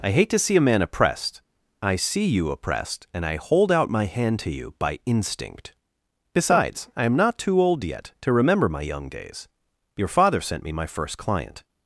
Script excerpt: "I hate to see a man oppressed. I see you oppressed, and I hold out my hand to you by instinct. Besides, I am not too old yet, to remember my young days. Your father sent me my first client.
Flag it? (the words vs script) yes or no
no